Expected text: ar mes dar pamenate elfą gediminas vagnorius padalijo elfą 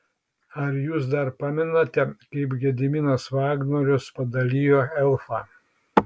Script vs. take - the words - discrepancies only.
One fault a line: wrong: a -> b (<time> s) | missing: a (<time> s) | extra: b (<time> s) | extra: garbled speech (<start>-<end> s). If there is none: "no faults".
wrong: mes -> jūs (0.8 s)
wrong: elfą -> kaip (2.2 s)